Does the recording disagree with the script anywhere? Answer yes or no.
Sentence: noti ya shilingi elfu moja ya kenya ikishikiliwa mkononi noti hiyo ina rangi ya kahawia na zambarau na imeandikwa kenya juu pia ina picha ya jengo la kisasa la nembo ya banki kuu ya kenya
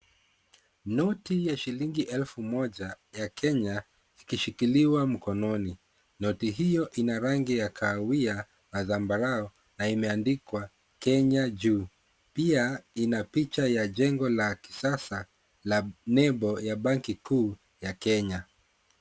no